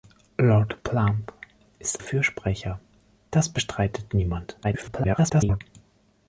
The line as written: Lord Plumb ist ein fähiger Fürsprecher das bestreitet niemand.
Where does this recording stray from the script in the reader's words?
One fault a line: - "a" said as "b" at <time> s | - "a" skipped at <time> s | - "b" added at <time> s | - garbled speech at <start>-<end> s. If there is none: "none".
- "ein fähiger" skipped at 2.0 s
- garbled speech at 4.6-5.6 s